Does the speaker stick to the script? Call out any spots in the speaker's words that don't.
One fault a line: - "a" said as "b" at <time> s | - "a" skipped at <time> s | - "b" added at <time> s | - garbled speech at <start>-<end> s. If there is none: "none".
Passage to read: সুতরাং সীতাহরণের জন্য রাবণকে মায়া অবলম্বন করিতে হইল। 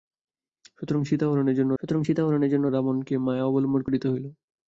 - "সুতরাং সীতাহরণের জন্য" added at 1.8 s